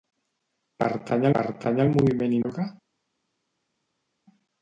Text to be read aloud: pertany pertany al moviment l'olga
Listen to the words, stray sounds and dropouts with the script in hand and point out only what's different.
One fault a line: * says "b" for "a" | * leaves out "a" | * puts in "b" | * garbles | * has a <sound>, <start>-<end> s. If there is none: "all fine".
all fine